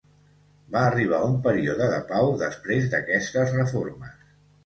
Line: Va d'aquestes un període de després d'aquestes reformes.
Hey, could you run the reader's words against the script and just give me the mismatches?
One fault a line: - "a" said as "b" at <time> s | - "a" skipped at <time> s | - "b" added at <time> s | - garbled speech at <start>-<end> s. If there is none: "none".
- "d'aquestes" said as "arribar" at 0.9 s
- "pau" added at 2.1 s